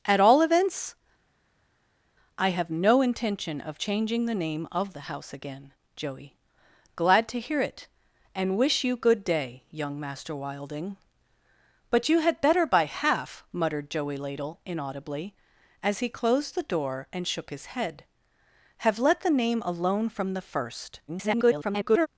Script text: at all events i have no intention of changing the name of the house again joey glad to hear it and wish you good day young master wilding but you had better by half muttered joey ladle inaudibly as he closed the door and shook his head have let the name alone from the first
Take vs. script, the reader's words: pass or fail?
fail